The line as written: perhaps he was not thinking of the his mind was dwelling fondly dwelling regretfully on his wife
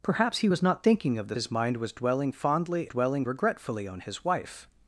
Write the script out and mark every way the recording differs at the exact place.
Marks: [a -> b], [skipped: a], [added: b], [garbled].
perhaps he was not thinking of the his mind was dwelling fondly dwelling regretfully on his wife